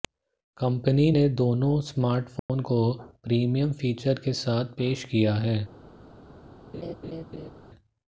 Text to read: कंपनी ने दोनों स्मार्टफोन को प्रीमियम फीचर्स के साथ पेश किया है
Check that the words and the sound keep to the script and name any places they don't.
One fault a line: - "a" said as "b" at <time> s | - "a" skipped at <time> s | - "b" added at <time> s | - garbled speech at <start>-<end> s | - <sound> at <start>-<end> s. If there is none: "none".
- dropout at 2.4-2.5 s
- laugh at 6.7-7.5 s